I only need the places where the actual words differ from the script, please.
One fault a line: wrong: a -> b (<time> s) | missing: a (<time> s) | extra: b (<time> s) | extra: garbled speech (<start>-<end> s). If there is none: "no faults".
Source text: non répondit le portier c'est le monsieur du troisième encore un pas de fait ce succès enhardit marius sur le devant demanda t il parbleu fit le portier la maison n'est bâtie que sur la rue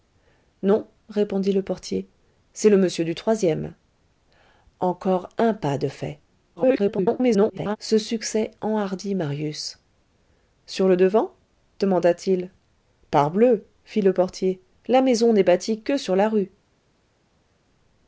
extra: garbled speech (6.6-7.8 s)